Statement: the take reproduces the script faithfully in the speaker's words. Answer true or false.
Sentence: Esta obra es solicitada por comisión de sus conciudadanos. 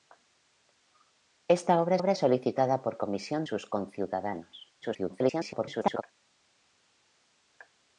false